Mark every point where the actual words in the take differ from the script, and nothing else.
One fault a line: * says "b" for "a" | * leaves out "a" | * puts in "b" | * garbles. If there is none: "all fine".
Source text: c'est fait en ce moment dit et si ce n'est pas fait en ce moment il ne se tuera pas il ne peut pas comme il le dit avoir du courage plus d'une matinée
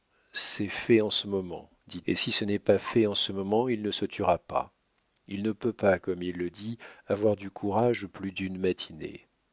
all fine